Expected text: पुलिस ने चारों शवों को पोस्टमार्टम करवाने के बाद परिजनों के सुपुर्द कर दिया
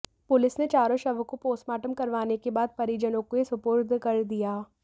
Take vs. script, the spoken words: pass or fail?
pass